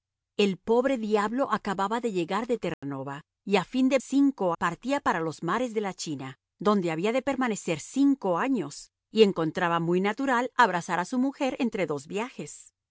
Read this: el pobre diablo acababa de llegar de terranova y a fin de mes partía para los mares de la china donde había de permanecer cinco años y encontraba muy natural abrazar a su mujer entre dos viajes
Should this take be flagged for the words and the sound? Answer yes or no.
yes